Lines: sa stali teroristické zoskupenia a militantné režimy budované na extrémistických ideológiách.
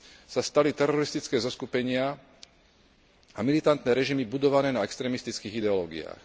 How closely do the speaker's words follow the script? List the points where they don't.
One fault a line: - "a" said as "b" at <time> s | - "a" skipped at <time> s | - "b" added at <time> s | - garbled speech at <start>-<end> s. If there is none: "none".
none